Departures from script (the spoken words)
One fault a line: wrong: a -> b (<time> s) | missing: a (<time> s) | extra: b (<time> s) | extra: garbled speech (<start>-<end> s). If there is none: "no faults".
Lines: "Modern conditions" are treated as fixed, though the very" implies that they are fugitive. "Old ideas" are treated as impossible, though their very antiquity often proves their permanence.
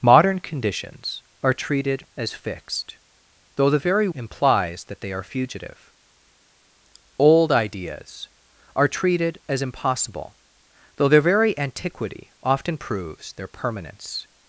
no faults